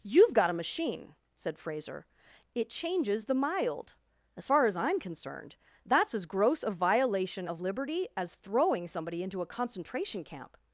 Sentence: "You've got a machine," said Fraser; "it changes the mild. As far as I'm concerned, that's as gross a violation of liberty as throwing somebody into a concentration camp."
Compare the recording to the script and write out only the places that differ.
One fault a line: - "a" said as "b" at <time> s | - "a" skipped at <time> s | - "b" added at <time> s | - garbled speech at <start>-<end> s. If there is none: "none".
none